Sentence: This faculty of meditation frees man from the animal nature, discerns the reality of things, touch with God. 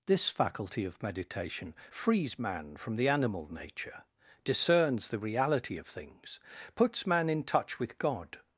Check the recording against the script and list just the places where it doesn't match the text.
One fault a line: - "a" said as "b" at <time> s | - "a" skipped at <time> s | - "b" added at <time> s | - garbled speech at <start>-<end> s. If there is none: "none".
- "puts man in" added at 6.8 s